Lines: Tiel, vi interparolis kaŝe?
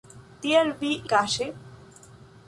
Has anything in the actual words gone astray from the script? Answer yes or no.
yes